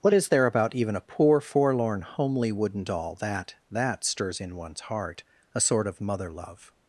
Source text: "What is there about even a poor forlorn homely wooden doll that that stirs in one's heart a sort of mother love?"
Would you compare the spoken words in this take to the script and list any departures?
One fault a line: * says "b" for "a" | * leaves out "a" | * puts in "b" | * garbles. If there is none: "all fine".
all fine